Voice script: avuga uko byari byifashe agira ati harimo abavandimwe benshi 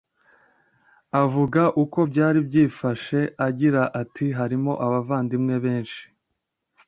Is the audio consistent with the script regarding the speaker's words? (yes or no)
yes